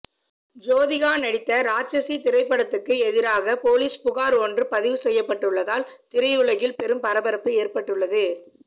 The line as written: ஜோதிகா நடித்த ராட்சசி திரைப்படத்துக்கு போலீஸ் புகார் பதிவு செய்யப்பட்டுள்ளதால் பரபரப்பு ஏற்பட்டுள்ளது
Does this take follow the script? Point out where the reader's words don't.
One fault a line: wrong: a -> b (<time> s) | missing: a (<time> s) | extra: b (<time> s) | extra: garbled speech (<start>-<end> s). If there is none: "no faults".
extra: எதிராக (3.0 s)
extra: ஒன்று (4.4 s)
extra: திரையுலகில் பெரும் (6.1 s)